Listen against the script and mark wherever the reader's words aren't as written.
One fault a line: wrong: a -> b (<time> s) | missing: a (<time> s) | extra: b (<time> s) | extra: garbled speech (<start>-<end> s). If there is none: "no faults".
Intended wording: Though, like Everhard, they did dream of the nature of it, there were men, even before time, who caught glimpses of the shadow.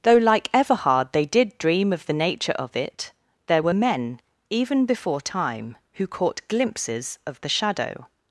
no faults